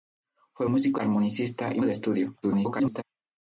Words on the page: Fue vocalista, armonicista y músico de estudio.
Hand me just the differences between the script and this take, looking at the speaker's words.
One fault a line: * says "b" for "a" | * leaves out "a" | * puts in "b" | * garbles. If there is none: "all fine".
* says "músico" for "vocalista"
* leaves out "músico"
* garbles